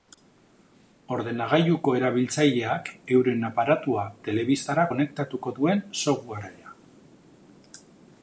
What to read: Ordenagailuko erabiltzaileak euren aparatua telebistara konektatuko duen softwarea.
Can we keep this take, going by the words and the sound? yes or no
yes